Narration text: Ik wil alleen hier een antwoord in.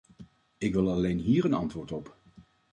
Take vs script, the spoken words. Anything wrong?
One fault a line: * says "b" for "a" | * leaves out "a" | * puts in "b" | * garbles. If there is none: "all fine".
* says "op" for "in"